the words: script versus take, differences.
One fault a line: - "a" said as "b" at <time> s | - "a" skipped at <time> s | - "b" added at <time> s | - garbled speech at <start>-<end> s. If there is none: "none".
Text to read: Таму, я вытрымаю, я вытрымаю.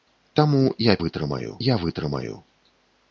none